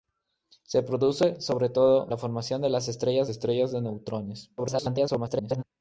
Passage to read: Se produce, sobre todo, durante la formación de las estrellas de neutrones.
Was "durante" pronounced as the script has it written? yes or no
no